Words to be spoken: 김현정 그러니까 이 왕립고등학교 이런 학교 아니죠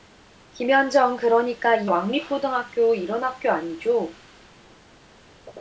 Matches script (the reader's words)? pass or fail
pass